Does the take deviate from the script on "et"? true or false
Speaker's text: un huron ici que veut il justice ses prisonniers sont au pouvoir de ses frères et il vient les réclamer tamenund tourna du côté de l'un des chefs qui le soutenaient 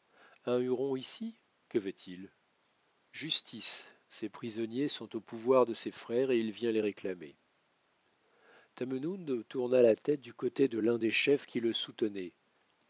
false